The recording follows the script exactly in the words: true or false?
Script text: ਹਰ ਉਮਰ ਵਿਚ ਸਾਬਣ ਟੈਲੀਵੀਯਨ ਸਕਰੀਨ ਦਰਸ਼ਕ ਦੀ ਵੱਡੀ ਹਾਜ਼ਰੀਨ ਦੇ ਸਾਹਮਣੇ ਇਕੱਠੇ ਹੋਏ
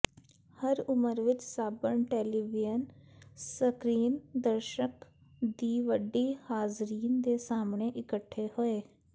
true